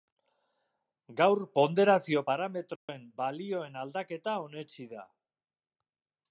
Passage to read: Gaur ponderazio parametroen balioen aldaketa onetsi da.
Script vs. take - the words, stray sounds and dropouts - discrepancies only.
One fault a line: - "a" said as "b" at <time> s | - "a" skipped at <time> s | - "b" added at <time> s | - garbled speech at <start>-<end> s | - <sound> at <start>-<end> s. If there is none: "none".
- dropout at 2.8-2.9 s